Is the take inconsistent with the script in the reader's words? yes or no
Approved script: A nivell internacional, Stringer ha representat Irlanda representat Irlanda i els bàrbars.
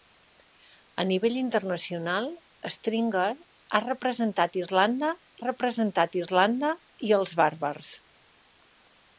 no